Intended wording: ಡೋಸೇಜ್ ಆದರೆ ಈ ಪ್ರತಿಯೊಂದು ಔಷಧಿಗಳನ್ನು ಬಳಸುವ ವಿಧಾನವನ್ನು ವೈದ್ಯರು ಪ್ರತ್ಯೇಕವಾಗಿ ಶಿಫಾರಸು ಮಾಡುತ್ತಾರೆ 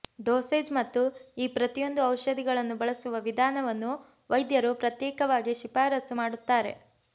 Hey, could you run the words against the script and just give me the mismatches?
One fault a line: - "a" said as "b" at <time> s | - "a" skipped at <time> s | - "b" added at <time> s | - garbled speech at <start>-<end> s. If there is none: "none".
- "ಆದರೆ" said as "ಮತ್ತು" at 0.7 s